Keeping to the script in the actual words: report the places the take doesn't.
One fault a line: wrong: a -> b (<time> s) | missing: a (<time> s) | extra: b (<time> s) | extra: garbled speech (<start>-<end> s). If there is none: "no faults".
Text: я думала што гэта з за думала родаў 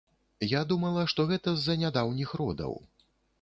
wrong: думала -> нядаўніх (1.8 s)